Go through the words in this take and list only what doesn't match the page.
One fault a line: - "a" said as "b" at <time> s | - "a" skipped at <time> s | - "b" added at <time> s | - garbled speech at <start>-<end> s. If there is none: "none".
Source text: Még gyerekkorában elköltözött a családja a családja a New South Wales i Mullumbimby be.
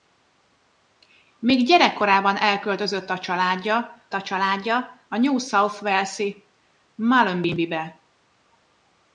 none